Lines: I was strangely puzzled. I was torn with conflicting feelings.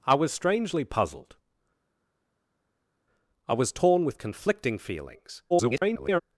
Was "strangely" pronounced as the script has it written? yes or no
yes